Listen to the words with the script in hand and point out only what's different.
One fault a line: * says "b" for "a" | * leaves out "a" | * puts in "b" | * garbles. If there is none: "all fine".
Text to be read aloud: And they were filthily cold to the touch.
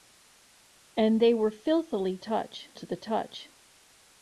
* says "touch" for "cold"